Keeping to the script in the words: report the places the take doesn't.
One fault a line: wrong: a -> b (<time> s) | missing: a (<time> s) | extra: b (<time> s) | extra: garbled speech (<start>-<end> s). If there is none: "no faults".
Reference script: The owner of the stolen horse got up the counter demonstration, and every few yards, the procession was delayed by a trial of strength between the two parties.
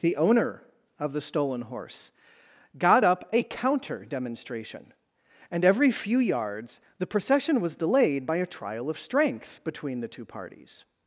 wrong: the -> a (3.3 s)